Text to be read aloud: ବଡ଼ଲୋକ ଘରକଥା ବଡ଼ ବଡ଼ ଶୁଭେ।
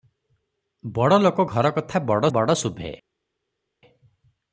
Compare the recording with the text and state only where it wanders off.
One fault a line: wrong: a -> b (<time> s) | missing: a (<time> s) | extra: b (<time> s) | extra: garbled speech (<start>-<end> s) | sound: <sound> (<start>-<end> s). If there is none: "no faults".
no faults